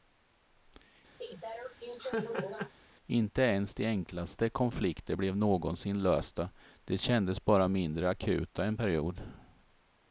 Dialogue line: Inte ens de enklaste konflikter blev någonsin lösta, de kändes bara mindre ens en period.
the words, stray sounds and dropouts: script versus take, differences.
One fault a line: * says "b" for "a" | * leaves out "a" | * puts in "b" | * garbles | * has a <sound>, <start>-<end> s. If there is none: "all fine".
* has a laugh, 1.2-2.7 s
* says "akuta" for "ens"